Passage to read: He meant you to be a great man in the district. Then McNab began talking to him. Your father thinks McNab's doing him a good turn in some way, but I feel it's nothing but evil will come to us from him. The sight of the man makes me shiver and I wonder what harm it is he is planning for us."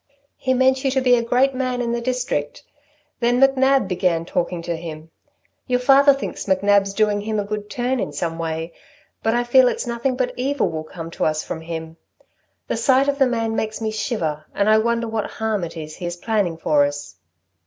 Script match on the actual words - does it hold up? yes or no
yes